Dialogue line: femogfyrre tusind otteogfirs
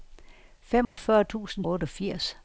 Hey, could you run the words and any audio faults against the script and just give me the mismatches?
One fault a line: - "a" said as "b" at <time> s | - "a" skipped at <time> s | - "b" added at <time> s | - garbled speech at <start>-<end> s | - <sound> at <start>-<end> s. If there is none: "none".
- dropout at 0.8-1.0 s